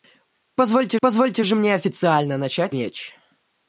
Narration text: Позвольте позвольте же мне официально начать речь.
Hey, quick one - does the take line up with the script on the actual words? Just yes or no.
yes